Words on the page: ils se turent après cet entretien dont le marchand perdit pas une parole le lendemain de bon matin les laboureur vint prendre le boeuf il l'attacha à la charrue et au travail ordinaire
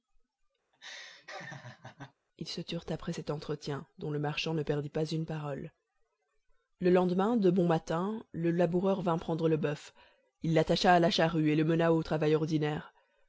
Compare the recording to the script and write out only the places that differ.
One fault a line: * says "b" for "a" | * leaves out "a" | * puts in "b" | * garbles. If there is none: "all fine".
* puts in "ne"
* says "le" for "les"
* puts in "le mena"